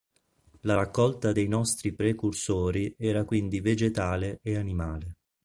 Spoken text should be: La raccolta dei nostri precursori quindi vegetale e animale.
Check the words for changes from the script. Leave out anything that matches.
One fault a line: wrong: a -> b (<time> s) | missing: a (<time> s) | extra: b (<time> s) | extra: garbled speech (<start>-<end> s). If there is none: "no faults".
extra: era (3.0 s)